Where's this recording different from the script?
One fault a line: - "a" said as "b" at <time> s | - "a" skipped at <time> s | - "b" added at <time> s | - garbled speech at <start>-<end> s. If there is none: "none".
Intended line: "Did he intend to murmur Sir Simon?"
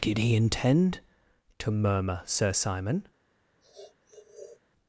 none